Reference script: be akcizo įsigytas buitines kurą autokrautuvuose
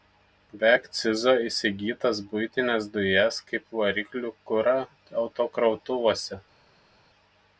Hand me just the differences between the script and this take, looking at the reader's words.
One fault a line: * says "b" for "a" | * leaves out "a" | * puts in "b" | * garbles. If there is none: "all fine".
* puts in "dujas kaip variklių"